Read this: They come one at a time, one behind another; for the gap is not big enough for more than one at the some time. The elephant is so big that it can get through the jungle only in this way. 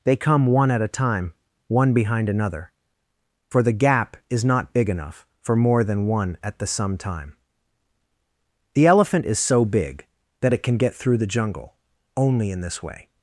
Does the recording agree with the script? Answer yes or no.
yes